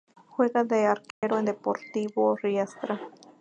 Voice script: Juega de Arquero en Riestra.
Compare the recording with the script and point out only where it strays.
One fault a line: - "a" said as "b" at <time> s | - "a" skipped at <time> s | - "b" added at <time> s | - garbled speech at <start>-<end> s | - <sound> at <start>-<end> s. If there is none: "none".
- dropout at 1.1-1.2 s
- "Deportivo" added at 1.4 s